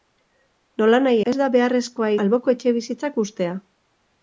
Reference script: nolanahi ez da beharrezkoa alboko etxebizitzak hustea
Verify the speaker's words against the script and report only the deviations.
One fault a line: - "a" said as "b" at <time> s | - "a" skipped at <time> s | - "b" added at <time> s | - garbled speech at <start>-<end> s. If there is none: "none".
none